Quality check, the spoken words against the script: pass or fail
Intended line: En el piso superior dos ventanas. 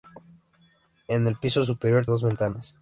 pass